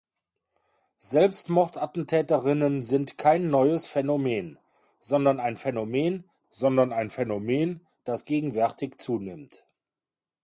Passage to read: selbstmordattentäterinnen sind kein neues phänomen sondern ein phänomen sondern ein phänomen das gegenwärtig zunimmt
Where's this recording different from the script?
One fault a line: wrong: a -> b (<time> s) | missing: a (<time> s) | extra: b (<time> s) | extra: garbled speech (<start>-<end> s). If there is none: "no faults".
no faults